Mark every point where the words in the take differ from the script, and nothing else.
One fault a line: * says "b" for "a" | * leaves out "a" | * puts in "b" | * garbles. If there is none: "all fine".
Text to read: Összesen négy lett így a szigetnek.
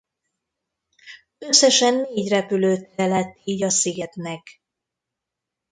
* puts in "repülőtere"